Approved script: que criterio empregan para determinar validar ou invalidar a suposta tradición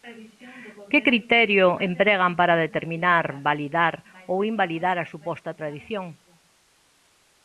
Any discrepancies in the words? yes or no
no